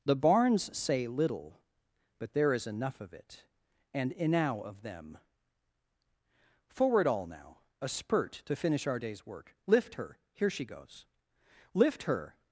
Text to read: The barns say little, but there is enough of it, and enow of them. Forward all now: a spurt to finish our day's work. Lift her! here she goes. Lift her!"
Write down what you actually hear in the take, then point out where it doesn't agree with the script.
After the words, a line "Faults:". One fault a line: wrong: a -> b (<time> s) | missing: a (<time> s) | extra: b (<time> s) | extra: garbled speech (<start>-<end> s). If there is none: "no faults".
The barns say little, but there is enough of it, and enow of them. Forward all now: a spurt to finish our day's work. Lift her! here she goes. Lift her!"
Faults:
no faults